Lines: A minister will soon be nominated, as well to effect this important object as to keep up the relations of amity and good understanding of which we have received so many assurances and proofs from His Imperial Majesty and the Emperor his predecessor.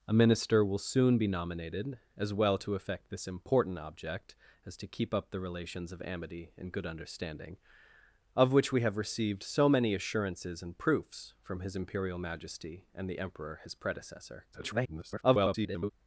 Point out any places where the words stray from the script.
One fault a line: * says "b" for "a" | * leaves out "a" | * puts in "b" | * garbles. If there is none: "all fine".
* garbles